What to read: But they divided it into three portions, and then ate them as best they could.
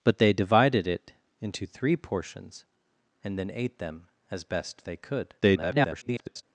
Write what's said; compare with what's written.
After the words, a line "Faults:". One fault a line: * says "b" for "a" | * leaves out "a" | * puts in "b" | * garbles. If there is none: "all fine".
But they divided it into three portions, and then ate them as best they could. [garbled]
Faults:
* garbles